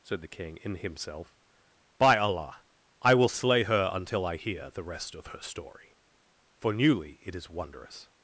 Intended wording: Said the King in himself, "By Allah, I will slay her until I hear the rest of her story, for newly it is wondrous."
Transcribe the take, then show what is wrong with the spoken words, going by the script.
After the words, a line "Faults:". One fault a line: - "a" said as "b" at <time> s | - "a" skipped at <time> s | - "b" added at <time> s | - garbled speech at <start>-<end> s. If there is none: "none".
Said the King in himself, "By Allah, I will slay her until I hear the rest of her story, for newly it is wondrous."
Faults:
none